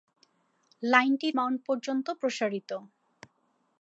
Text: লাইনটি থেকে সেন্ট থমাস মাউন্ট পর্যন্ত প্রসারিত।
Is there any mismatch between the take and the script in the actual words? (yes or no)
yes